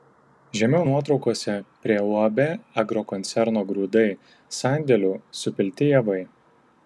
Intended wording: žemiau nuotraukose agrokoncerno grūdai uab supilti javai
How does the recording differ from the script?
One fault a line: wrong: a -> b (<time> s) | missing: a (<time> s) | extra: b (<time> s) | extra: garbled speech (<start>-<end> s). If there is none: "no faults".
extra: prie uab (1.9 s)
wrong: uab -> sandėlių (4.6 s)